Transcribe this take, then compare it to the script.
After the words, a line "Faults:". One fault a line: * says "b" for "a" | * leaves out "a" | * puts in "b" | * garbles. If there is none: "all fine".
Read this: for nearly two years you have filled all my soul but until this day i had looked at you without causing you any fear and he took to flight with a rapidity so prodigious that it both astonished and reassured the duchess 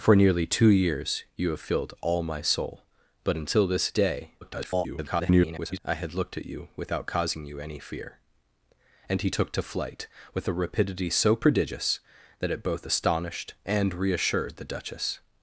for nearly two years you have filled all my soul but until this day [garbled] i had looked at you without causing you any fear and he took to flight with a rapidity so prodigious that it both astonished and reassured the duchess
Faults:
* garbles